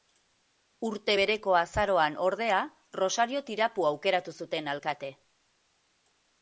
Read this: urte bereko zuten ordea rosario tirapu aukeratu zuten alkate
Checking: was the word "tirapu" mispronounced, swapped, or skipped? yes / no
no